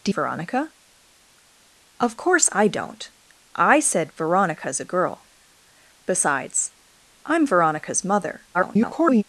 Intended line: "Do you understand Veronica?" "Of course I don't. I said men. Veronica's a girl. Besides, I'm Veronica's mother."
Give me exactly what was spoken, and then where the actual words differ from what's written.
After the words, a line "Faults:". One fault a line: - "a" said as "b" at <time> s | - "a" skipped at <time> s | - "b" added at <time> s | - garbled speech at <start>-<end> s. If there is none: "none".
"Do Veronica?" "Of course I don't. I said. Veronica's a girl. Besides, I'm Veronica's mother." [garbled]
Faults:
- "you understand" skipped at 0.1 s
- "men" skipped at 4.1 s
- garbled speech at 8.5-9.2 s